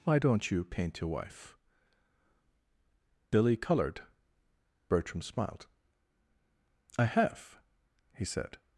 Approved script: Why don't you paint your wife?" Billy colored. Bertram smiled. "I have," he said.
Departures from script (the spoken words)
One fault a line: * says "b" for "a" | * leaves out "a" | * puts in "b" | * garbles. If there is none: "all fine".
all fine